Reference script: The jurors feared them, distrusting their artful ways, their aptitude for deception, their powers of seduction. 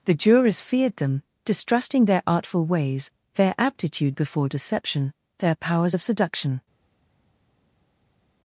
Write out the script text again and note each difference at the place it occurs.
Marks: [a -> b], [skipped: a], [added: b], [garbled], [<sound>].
The jurors feared them, distrusting their artful ways, their aptitude [for -> before] deception, their powers of seduction.